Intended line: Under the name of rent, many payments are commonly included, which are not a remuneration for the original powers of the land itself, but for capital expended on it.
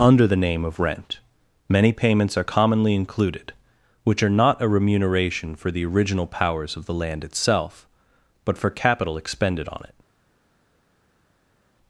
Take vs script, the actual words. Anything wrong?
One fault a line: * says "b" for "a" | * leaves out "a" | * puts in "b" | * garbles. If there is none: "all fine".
all fine